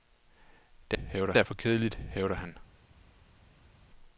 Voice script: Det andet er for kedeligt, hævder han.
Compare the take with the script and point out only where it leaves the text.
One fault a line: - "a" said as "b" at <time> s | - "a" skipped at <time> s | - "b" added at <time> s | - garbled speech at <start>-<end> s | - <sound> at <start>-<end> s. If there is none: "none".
- "andet" said as "hævder" at 0.9 s